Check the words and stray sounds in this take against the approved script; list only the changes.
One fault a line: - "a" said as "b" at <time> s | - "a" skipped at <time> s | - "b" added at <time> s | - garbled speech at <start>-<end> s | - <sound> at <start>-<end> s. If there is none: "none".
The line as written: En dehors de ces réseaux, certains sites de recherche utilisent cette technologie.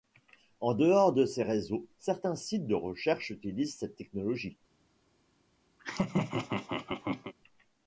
- laugh at 5.8-7.3 s